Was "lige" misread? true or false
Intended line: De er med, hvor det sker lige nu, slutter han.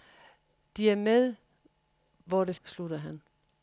true